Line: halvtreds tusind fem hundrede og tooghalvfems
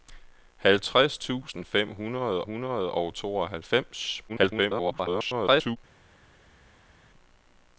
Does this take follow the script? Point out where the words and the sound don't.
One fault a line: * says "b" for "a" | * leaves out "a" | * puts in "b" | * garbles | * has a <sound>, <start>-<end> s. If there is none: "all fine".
* puts in "hundrede"
* garbles